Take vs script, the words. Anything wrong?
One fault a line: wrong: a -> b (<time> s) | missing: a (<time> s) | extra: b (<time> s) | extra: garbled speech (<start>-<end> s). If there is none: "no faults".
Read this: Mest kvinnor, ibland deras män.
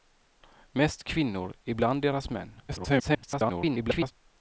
extra: garbled speech (2.7-4.1 s)